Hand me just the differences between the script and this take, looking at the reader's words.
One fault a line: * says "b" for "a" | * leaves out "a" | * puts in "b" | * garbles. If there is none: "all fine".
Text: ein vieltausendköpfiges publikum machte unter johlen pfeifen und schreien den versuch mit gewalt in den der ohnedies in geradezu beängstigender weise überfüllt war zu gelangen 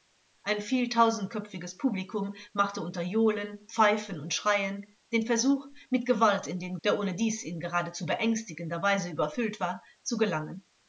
all fine